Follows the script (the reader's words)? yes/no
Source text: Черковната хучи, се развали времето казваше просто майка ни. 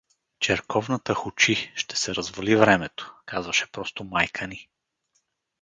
no